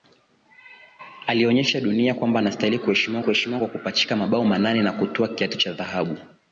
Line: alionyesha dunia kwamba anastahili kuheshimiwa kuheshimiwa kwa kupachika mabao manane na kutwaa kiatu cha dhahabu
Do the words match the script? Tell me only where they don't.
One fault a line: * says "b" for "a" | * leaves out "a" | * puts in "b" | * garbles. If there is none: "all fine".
all fine